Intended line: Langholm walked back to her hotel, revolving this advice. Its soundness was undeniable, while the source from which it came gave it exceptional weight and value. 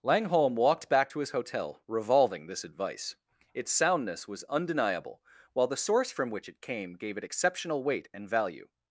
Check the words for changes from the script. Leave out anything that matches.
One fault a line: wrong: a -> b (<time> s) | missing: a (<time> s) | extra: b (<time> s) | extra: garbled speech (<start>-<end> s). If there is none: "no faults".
wrong: her -> his (1.2 s)